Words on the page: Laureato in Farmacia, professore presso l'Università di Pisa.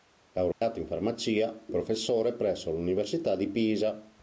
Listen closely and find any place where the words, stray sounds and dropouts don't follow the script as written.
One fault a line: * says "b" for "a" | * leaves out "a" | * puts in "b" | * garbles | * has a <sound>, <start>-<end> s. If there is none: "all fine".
* has a dropout, 0.5-0.6 s